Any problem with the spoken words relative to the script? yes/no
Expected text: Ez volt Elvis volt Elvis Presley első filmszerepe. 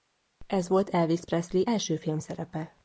yes